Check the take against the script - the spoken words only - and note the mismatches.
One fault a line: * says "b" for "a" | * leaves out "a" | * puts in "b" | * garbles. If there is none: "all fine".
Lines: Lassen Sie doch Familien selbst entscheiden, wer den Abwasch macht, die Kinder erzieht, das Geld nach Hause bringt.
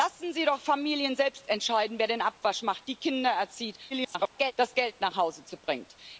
* garbles